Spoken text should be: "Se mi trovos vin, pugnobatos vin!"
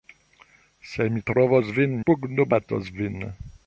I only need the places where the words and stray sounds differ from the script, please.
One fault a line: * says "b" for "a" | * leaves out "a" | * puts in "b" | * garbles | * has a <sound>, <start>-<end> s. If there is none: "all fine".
all fine